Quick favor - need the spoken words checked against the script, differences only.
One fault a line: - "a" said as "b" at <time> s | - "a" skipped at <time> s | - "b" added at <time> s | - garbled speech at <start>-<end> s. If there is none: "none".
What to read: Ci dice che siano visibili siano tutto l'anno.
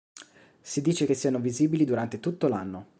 - "Ci" said as "Si" at 0.6 s
- "siano" said as "durante" at 1.8 s